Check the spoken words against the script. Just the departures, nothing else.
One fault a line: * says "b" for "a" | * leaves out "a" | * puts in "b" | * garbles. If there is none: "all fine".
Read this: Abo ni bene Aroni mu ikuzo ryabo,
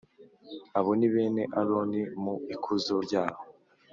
all fine